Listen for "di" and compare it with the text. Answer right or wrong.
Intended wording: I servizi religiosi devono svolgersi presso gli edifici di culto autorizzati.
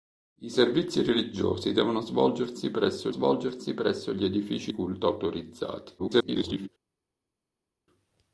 wrong